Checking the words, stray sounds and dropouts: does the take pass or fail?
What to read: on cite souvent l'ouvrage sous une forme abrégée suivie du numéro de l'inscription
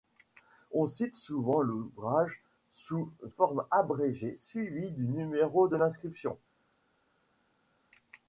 fail